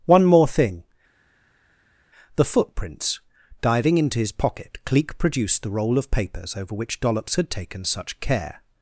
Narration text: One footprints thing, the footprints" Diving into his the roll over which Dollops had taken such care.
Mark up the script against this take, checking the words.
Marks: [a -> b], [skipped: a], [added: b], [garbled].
One [footprints -> more] thing, the footprints" Diving into his [added: pocket Cleek produced] the roll [added: of papers] over which Dollops had taken such care.